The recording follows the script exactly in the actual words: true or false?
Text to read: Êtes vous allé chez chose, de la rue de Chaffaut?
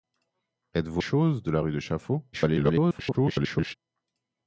false